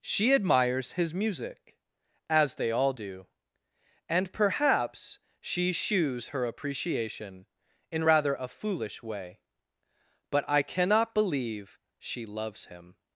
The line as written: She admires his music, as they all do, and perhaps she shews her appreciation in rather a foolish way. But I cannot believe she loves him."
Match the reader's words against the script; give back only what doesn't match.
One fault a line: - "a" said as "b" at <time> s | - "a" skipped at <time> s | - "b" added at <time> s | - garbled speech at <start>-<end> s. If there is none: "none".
none